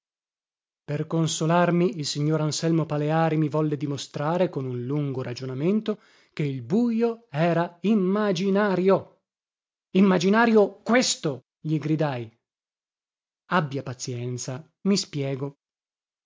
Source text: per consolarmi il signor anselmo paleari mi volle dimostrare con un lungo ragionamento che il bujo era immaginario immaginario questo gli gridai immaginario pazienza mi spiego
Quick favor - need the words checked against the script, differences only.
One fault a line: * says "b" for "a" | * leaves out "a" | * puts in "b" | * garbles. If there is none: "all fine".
* says "abbia" for "immaginario"